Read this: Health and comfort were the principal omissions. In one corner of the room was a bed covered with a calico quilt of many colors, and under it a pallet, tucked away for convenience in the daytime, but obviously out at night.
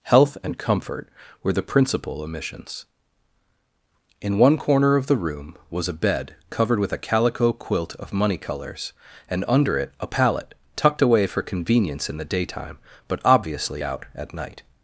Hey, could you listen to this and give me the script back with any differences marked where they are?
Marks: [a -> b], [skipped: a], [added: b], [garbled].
Health and comfort were the principal omissions. In one corner of the room was a bed covered with a calico quilt of [many -> money] colors, and under it a pallet, tucked away for convenience in the daytime, but obviously out at night.